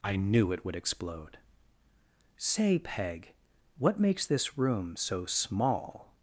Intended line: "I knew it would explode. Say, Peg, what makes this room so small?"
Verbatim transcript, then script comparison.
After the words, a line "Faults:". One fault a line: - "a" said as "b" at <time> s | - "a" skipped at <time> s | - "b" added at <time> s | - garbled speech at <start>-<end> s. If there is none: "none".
"I knew it would explode. Say, Peg, what makes this room so small?"
Faults:
none